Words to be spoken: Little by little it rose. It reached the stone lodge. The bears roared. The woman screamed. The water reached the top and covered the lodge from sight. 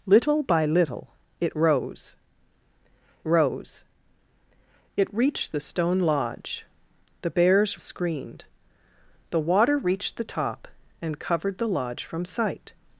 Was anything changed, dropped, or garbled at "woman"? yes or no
yes